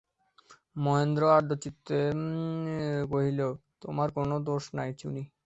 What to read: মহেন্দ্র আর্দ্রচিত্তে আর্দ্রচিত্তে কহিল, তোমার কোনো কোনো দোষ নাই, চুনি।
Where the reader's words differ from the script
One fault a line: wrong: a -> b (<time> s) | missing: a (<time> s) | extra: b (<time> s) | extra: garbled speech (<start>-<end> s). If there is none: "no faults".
missing: আর্দ্রচিত্তে (2.0 s)
missing: কোনো (4.4 s)